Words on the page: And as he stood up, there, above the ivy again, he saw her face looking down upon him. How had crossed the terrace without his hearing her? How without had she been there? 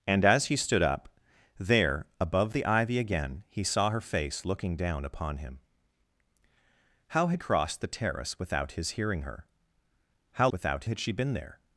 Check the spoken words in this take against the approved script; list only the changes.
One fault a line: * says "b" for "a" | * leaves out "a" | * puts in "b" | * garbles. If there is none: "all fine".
all fine